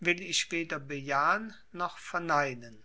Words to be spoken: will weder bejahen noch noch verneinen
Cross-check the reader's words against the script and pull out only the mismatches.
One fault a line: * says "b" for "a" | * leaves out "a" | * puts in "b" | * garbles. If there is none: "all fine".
* puts in "ich"
* leaves out "noch"